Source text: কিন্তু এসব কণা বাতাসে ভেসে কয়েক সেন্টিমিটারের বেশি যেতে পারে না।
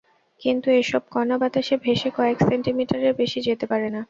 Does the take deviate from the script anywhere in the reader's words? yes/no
no